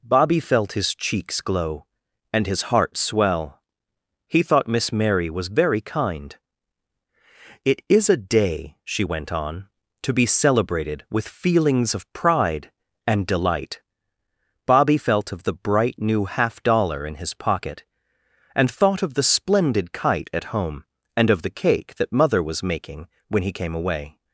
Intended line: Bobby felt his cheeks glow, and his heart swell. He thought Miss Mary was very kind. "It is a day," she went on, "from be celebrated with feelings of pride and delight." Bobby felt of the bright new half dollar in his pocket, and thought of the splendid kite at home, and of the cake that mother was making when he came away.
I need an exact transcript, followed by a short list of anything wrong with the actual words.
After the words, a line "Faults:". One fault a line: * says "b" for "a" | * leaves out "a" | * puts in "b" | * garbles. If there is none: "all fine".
Bobby felt his cheeks glow, and his heart swell. He thought Miss Mary was very kind. "It is a day," she went on, "to be celebrated with feelings of pride and delight." Bobby felt of the bright new half dollar in his pocket, and thought of the splendid kite at home, and of the cake that mother was making when he came away.
Faults:
* says "to" for "from"